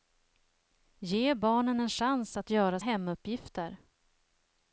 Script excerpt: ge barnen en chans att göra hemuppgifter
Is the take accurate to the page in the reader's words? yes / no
yes